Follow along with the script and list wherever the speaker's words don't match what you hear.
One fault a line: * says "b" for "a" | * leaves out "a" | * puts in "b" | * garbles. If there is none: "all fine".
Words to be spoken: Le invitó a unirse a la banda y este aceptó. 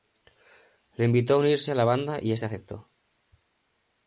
all fine